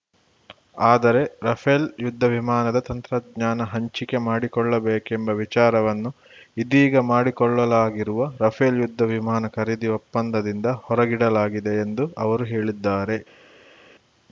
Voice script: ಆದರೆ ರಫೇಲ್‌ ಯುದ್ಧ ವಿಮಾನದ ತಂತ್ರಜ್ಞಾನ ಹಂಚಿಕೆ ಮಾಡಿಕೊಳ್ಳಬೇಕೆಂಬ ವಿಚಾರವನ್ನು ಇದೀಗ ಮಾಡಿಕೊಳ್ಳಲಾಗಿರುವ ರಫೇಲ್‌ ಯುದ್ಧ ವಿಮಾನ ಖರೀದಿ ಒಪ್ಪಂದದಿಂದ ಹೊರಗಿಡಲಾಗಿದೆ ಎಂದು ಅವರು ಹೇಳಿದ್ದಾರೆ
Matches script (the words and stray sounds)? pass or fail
pass